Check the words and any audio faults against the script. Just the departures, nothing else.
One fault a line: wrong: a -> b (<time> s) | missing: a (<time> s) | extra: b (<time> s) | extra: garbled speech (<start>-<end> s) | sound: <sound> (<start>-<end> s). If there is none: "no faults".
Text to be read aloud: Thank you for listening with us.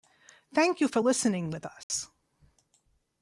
sound: dropout (1.8-1.9 s)